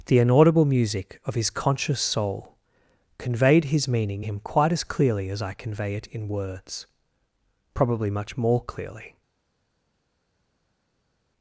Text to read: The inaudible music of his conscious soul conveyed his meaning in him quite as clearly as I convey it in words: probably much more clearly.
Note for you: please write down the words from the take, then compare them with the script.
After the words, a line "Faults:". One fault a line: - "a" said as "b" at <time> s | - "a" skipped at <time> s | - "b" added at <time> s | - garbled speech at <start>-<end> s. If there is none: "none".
The inaudible music of his conscious soul conveyed his meaning him quite as clearly as I convey it in words: probably much more clearly.
Faults:
- "in" skipped at 4.2 s